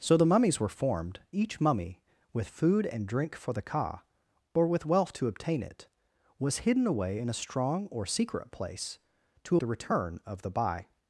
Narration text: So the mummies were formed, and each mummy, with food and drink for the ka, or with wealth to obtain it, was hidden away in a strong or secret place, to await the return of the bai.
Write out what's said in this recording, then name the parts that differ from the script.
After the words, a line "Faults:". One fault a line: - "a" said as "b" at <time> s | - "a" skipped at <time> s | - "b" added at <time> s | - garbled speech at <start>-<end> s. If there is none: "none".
So the mummies were formed, each mummy, with food and drink for the ka, or with wealth to obtain it, was hidden away in a strong or secret place, to the return of the bai.
Faults:
- "and" skipped at 1.2 s
- "await" skipped at 9.6 s